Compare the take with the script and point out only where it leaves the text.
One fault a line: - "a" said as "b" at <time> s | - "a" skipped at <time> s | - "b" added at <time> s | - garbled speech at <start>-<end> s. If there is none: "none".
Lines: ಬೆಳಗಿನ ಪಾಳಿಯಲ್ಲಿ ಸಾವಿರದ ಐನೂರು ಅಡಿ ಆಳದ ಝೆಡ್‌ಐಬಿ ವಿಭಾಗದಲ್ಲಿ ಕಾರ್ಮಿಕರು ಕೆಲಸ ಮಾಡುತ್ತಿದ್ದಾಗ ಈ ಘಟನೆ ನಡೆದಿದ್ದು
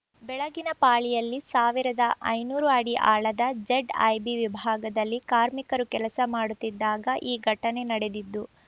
none